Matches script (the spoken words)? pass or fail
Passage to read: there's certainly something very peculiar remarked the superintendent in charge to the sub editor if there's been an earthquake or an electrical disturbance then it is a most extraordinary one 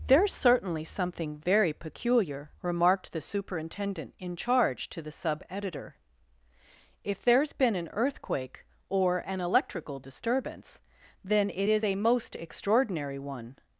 pass